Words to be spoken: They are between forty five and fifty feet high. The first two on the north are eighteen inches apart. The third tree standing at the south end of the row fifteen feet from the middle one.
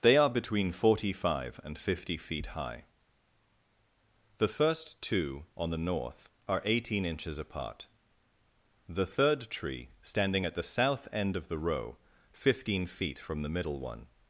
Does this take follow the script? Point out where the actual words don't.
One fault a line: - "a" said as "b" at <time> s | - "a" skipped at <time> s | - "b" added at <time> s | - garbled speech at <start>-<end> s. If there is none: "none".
none